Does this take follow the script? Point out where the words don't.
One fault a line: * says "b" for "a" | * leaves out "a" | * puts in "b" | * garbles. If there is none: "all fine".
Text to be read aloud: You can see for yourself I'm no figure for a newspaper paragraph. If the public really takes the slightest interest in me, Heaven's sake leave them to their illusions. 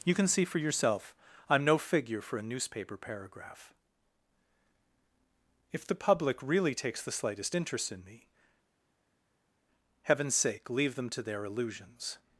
all fine